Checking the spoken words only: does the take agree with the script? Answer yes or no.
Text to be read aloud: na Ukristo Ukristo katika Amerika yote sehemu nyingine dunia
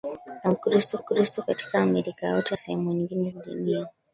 yes